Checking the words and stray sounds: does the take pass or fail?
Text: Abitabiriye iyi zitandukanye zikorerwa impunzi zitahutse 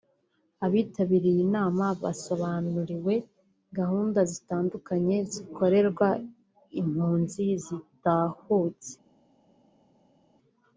fail